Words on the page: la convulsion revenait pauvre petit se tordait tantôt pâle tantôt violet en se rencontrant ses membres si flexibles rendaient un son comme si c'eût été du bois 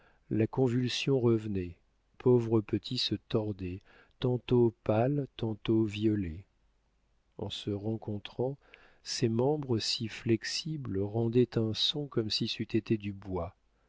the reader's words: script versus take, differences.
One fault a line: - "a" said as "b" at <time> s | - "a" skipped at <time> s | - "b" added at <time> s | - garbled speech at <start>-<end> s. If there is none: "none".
none